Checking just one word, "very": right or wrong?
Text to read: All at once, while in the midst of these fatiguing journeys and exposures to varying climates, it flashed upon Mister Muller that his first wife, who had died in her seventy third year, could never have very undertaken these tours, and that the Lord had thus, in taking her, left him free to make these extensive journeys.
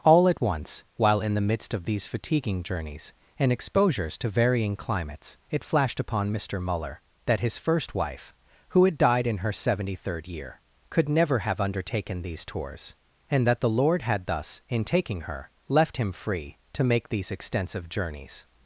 wrong